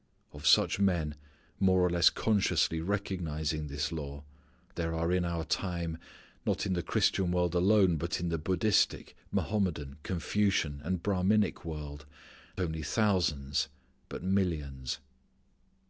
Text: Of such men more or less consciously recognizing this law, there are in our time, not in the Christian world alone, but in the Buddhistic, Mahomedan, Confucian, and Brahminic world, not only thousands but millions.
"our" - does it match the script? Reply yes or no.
yes